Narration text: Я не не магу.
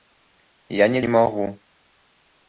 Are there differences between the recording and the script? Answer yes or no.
no